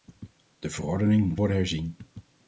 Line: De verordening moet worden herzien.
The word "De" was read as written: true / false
true